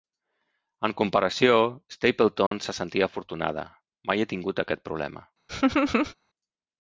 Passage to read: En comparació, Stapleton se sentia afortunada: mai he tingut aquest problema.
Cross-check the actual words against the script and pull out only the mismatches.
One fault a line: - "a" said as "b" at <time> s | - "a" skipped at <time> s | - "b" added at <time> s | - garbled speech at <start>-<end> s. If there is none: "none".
none